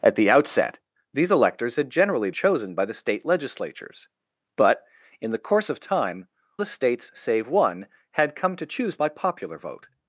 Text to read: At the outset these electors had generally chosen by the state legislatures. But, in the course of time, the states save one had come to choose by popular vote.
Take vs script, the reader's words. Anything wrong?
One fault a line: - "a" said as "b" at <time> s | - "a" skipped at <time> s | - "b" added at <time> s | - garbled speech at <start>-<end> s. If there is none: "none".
none